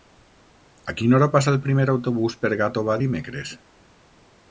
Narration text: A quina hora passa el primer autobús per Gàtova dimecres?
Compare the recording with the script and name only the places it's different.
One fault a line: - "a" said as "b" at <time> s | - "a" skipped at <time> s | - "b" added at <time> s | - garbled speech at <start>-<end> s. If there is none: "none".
none